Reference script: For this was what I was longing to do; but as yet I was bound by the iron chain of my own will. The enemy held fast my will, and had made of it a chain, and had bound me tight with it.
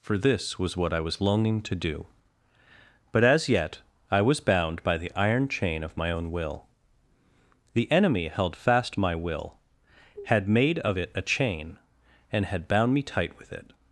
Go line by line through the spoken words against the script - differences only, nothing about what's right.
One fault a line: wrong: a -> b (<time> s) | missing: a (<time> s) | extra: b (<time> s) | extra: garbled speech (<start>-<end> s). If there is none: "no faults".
missing: and (9.6 s)